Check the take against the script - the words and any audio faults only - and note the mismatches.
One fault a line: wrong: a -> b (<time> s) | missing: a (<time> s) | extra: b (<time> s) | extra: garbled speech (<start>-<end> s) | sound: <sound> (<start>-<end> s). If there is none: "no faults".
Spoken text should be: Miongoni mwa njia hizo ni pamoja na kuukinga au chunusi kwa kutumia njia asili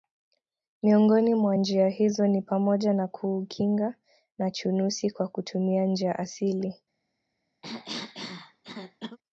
wrong: au -> na (4.4 s)
sound: cough (7.6-9.2 s)